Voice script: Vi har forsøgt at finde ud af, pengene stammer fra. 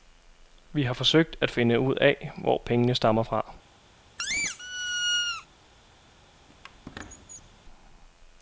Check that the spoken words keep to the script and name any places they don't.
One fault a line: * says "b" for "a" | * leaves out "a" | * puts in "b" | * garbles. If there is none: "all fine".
* puts in "hvor"